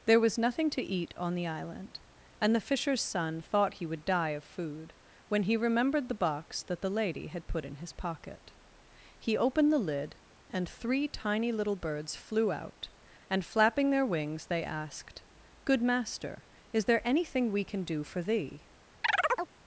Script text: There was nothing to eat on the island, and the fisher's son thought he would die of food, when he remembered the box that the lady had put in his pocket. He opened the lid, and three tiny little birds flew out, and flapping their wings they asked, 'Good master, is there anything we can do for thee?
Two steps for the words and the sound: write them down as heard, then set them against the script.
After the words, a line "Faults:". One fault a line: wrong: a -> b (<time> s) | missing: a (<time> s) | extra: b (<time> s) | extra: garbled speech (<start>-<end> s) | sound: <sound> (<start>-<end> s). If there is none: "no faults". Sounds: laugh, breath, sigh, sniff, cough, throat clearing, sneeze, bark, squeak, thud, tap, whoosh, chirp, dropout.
There was nothing to eat on the island, and the fisher's son thought he would die of food, when he remembered the box that the lady had put in his pocket. He opened the lid, and three tiny little birds flew out, and flapping their wings they asked, 'Good master, is there anything we can do for thee?
Faults:
sound: chirp (19.0-19.5 s)